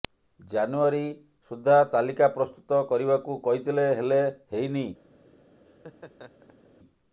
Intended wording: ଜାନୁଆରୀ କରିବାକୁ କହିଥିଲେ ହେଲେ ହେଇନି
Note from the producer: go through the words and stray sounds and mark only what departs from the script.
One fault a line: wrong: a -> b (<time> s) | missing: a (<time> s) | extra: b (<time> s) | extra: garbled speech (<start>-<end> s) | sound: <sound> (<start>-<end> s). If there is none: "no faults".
extra: ସୁଦ୍ଧା ତାଲିକା ପ୍ରସ୍ତୁତ (1.5 s)
sound: laugh (5.7-6.7 s)